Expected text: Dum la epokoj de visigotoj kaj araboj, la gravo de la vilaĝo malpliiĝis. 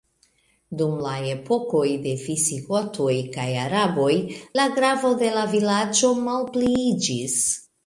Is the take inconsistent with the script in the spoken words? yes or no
no